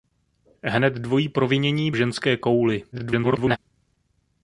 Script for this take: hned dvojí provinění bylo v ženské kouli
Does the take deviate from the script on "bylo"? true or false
true